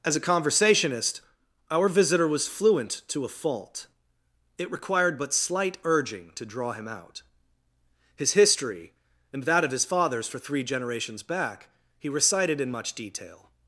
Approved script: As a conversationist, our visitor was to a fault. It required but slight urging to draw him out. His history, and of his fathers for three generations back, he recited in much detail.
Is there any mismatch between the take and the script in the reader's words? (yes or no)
yes